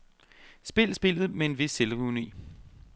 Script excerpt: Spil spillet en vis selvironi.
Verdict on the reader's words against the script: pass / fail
fail